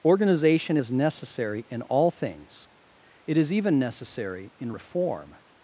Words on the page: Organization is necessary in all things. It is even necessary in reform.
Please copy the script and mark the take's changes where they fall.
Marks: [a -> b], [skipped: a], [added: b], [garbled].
Organization is necessary in all things. It is even necessary in reform.